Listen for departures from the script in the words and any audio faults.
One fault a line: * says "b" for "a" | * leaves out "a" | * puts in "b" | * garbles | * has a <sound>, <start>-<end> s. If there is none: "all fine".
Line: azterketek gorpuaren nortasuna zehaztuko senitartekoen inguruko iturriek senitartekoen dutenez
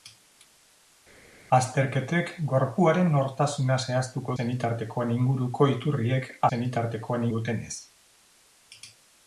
all fine